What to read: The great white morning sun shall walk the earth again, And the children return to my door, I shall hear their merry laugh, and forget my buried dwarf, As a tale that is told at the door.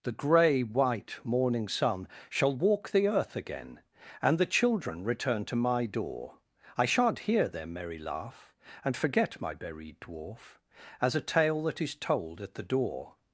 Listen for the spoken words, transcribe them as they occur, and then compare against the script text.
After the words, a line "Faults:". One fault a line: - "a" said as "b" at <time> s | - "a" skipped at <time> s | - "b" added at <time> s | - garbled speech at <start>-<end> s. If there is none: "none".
The grey white morning sun shall walk the earth again, And the children return to my door, I shan't hear their merry laugh, and forget my buried dwarf, As a tale that is told at the door.
Faults:
- "great" said as "grey" at 0.1 s
- "shall" said as "shan't" at 6.8 s